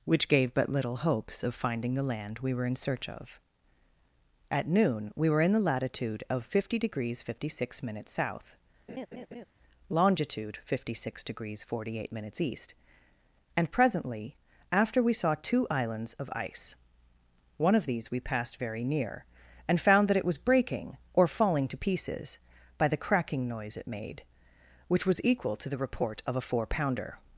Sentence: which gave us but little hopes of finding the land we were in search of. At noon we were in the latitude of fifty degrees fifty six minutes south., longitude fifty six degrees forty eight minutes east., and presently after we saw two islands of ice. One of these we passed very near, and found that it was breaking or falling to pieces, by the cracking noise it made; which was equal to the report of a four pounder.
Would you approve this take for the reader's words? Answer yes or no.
no